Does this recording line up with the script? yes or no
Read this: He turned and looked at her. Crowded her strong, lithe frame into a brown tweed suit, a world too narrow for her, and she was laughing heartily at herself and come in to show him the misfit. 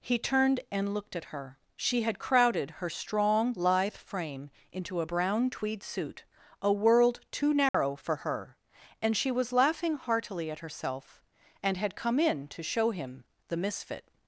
no